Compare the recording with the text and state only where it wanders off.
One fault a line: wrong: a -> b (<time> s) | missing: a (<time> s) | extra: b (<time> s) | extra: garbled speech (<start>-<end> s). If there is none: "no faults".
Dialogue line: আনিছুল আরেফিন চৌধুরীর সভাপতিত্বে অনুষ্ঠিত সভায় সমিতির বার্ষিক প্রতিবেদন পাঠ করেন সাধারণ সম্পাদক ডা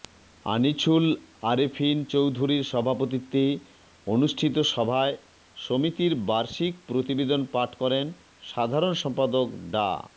no faults